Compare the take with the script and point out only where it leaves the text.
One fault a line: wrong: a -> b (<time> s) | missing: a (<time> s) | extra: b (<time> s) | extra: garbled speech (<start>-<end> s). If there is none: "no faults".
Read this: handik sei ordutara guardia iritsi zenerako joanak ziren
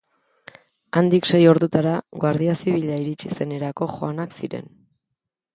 extra: zibila (2.6 s)